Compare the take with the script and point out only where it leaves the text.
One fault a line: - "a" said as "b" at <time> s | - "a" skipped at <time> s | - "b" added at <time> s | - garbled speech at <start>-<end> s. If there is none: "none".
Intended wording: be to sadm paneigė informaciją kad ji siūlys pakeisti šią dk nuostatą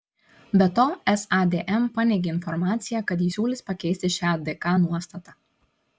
none